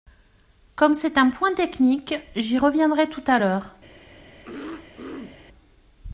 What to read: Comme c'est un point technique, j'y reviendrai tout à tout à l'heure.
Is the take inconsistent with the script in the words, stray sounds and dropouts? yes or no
yes